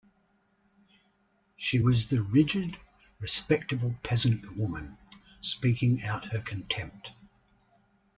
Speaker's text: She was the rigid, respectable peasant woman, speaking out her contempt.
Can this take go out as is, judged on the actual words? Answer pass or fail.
pass